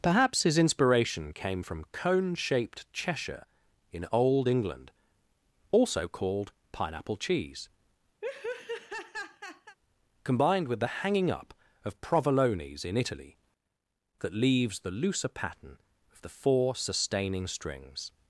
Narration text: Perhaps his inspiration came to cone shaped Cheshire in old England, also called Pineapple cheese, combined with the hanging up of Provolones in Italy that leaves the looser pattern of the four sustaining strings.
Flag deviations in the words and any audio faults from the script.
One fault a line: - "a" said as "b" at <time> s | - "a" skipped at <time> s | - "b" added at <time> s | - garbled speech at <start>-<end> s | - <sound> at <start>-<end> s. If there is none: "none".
- "to" said as "from" at 1.6 s
- laugh at 8.2-9.8 s